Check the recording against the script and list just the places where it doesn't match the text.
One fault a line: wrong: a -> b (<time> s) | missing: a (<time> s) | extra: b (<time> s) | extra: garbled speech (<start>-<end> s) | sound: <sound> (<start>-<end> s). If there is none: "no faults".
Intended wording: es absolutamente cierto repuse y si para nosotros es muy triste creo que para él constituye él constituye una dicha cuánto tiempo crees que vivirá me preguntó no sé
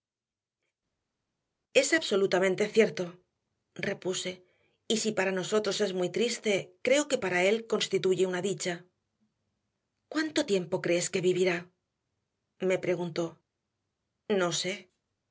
missing: él constituye (8.3 s)